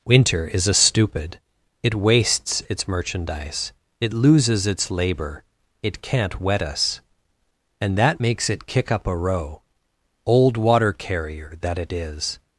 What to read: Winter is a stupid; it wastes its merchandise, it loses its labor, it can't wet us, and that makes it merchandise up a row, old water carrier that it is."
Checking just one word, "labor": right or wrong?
right